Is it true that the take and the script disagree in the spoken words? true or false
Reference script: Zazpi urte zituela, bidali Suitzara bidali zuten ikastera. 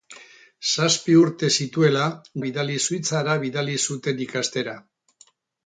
false